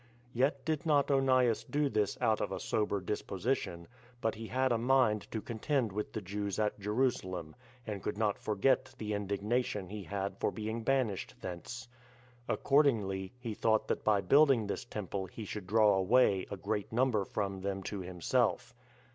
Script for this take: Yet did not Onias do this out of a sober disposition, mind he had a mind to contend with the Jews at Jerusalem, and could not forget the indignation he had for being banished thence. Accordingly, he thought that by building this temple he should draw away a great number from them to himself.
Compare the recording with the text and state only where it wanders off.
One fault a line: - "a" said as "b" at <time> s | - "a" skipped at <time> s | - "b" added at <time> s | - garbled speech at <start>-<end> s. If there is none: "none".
- "mind" said as "but" at 4.2 s